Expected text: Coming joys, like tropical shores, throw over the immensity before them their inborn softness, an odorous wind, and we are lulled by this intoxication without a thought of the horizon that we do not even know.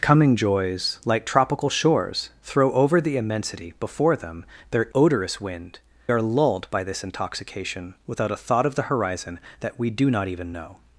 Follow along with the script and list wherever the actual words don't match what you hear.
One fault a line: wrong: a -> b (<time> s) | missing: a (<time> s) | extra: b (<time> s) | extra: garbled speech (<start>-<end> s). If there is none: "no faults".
missing: inborn softness an (4.9 s)
missing: and we (5.8 s)